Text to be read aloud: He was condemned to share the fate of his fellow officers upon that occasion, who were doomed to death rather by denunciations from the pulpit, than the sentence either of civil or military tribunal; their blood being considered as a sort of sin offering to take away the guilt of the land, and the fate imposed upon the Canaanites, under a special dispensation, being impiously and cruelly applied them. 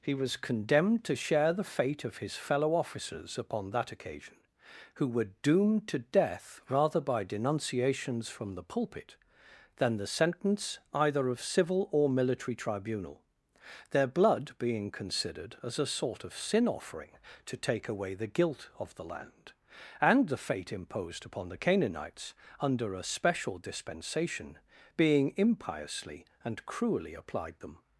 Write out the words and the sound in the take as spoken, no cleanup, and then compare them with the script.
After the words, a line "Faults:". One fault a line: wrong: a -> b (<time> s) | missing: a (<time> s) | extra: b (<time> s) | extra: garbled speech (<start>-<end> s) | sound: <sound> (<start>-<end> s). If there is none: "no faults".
He was condemned to share the fate of his fellow officers upon that occasion, who were doomed to death rather by denunciations from the pulpit, than the sentence either of civil or military tribunal; their blood being considered as a sort of sin offering to take away the guilt of the land, and the fate imposed upon the Canaanites, under a special dispensation, being impiously and cruelly applied them.
Faults:
no faults